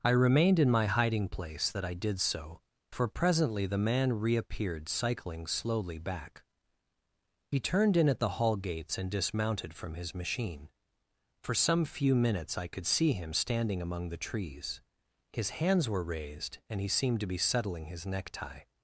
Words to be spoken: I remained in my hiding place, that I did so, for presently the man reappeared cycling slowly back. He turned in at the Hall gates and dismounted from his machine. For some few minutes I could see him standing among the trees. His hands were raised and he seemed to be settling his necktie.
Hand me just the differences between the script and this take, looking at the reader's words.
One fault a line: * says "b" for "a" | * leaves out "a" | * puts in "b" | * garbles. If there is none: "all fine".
all fine